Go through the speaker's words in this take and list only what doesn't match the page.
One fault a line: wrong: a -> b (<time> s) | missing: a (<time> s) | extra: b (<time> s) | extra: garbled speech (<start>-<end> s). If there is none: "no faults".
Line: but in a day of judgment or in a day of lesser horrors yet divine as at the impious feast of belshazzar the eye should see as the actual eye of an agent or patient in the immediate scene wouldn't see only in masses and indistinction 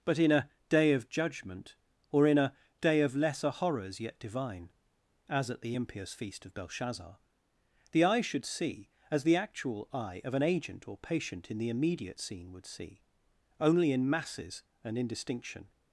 wrong: wouldn't -> would (12.5 s)